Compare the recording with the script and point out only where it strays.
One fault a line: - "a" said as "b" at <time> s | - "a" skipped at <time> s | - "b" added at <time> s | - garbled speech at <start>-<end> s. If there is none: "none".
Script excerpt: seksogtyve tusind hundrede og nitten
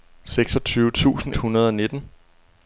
none